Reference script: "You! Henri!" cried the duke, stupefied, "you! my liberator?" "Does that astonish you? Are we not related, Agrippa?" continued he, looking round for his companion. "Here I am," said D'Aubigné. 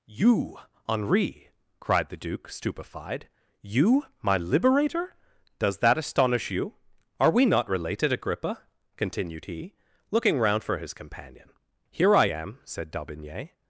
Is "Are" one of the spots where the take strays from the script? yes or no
no